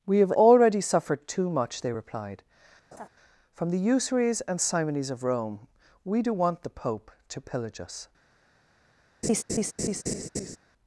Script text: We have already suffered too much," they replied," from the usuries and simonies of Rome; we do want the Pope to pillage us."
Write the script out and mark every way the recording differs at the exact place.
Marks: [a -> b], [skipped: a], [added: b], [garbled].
We have already suffered too much," they replied," from the usuries and simonies of Rome; we do want the Pope to pillage us."